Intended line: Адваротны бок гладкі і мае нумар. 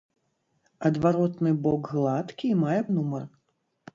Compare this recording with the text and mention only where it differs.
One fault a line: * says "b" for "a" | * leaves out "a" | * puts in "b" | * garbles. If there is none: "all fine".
all fine